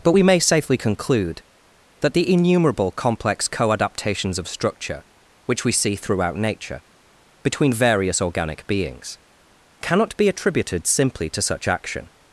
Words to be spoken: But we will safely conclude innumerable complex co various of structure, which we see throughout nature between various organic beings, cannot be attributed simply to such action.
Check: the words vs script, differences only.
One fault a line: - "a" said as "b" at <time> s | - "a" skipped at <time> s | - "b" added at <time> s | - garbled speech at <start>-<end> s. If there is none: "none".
- "will" said as "may" at 0.2 s
- "that the" added at 2.0 s
- "various" said as "adaptations" at 3.7 s